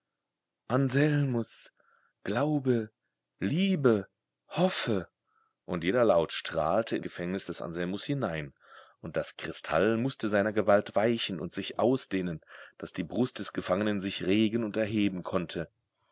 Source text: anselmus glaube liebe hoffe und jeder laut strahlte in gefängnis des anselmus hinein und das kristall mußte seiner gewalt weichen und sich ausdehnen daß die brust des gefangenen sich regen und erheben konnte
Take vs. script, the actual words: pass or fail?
pass